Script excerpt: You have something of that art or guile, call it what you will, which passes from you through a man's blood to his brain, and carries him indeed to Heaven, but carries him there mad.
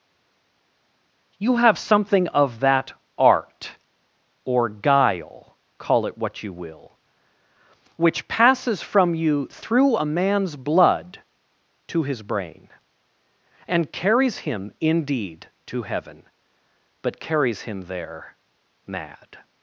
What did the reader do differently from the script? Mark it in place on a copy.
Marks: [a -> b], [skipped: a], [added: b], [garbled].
You have something of that art or guile, call it what you will, which passes from you through a man's blood to his brain, and carries him indeed to Heaven, but carries him there mad.